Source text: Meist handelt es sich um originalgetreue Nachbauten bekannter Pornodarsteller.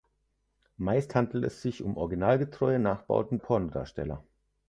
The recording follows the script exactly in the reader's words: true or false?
false